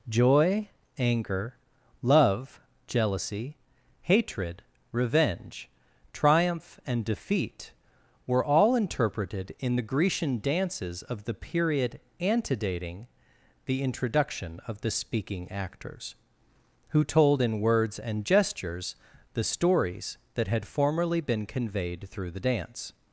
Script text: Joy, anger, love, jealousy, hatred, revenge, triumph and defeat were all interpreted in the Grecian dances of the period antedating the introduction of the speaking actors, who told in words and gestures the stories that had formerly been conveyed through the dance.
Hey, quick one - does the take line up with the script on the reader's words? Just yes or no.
yes